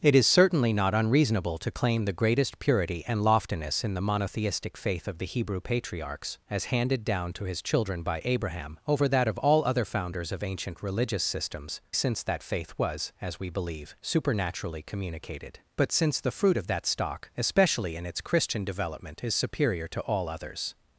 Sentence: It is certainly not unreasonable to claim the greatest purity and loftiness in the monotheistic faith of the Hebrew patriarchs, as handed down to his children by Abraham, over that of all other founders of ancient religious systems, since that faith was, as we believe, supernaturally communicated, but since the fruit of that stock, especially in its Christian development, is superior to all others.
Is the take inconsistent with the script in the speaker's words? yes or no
no